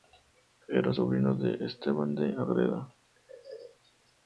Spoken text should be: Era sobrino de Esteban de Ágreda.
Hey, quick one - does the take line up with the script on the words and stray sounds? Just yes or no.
yes